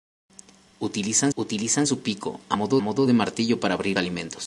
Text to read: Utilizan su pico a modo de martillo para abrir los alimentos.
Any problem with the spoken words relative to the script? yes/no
yes